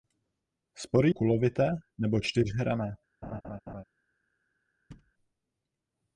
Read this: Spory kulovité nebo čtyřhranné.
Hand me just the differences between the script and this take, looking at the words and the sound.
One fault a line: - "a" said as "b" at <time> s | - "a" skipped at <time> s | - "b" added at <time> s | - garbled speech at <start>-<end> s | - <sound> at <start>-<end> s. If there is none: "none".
- laugh at 3.2-3.8 s
- thud at 4.9-5.1 s